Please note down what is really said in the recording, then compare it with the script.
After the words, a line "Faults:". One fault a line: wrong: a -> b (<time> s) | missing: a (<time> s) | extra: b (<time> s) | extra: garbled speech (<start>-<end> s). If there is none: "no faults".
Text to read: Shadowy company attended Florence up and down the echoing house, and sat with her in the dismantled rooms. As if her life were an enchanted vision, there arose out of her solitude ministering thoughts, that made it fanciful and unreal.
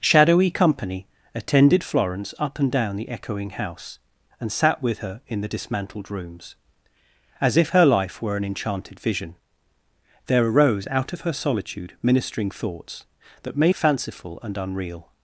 Shadowy company attended Florence up and down the echoing house, and sat with her in the dismantled rooms. As if her life were an enchanted vision, there arose out of her solitude ministering thoughts, that made fanciful and unreal.
Faults:
missing: it (13.7 s)